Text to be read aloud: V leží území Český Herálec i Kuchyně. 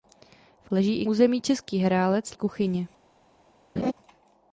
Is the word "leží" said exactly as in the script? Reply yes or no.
yes